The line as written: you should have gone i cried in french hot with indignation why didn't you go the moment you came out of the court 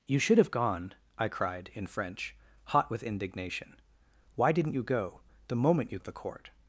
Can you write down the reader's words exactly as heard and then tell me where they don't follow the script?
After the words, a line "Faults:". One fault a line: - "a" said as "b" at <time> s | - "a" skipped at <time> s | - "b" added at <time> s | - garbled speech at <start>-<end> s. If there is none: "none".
you should have gone i cried in french hot with indignation why didn't you go the moment you of the court
Faults:
- "came out" skipped at 6.0 s